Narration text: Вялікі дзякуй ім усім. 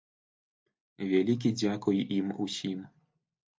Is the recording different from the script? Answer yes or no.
no